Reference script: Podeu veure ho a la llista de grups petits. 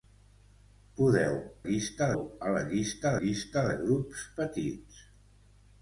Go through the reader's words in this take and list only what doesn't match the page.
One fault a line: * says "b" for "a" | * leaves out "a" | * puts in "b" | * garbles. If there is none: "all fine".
* says "llista" for "veure"
* puts in "llista"